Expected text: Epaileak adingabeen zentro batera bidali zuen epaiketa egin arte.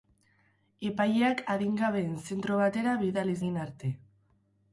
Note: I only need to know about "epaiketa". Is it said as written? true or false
false